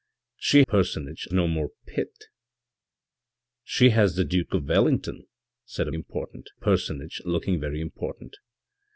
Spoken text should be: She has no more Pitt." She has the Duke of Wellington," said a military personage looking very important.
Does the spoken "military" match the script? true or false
false